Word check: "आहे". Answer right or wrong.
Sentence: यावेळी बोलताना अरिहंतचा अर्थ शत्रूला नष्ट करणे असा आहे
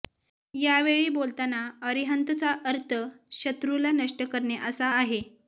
right